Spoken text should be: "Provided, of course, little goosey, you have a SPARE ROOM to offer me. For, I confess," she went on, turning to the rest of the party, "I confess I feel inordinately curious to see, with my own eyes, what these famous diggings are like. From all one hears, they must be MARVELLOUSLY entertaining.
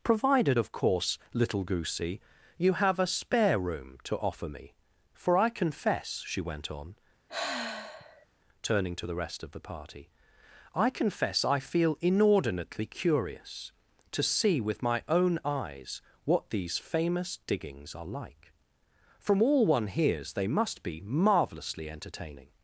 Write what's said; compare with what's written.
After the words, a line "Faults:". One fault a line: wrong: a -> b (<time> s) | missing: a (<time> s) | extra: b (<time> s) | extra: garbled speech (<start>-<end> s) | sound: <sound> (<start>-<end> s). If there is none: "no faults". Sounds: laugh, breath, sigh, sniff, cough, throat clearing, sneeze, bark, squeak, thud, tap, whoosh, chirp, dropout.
"Provided, of course, little goosey, you have a SPARE ROOM to offer me. For, I confess," she went on, turning to the rest of the party, "I confess I feel inordinately curious to see, with my own eyes, what these famous diggings are like. From all one hears, they must be MARVELLOUSLY entertaining.
Faults:
sound: sigh (7.3-8.3 s)